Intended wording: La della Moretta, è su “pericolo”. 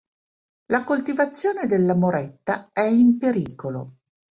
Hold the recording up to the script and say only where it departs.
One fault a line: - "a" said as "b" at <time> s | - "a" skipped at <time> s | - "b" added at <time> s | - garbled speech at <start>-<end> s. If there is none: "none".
- "coltivazione" added at 0.8 s
- "su" said as "in" at 2.8 s